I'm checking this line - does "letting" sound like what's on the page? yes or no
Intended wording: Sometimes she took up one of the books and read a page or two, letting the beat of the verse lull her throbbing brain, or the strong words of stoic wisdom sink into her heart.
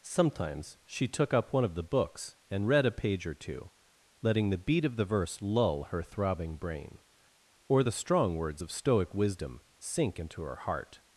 yes